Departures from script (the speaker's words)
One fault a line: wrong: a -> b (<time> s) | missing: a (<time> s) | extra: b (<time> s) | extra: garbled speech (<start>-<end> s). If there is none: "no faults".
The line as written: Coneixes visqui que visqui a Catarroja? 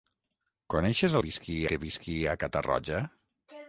no faults